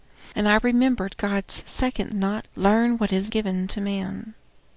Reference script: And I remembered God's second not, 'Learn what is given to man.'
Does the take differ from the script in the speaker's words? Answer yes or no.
no